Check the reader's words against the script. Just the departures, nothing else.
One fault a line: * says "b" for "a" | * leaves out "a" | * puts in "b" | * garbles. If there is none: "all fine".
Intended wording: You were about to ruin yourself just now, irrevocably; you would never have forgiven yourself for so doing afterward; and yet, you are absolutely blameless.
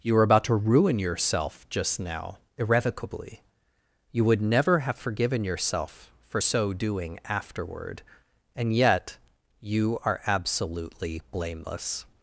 all fine